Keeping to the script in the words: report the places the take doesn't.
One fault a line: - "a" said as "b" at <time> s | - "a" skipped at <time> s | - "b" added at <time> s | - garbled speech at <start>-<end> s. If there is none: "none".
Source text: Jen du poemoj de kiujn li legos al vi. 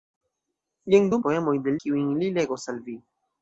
none